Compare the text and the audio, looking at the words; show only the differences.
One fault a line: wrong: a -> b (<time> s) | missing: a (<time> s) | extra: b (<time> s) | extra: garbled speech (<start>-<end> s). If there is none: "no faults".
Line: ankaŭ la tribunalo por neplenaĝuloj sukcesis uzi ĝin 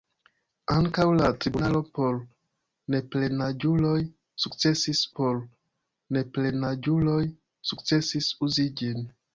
extra: por neplenaĝuloj sukcesis (5.2 s)